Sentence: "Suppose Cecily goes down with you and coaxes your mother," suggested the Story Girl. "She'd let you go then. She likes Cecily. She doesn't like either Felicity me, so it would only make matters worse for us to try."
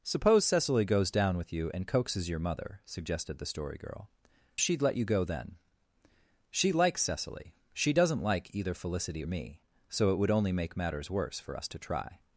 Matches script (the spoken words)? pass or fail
pass